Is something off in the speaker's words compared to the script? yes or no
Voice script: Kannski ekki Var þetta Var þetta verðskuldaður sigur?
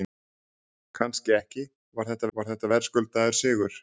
no